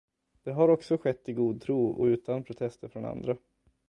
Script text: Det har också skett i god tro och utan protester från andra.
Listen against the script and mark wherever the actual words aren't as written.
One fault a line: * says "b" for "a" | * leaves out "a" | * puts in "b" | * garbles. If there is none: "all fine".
all fine